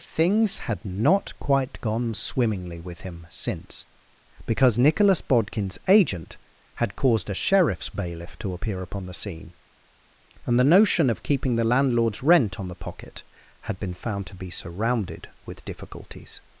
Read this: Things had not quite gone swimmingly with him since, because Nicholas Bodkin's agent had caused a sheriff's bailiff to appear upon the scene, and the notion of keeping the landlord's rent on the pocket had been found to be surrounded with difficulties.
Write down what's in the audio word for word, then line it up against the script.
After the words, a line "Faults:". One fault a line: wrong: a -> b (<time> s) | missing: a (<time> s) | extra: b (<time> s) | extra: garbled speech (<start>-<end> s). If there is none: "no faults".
Things had not quite gone swimmingly with him since, because Nicholas Bodkin's agent had caused a sheriff's bailiff to appear upon the scene, and the notion of keeping the landlord's rent on the pocket had been found to be surrounded with difficulties.
Faults:
no faults